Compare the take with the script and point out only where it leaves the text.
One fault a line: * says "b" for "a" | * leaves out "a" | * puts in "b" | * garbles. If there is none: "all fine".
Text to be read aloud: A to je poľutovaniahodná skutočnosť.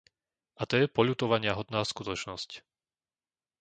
all fine